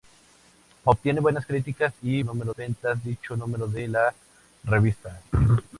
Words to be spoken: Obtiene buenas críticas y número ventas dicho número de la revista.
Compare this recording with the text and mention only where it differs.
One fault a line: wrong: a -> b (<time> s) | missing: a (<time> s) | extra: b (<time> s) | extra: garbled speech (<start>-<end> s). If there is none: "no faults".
no faults